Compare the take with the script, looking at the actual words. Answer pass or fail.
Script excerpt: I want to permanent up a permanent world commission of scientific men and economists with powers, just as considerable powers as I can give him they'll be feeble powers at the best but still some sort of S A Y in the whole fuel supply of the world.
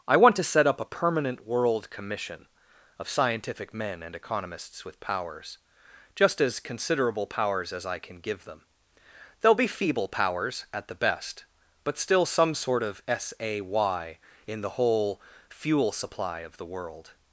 fail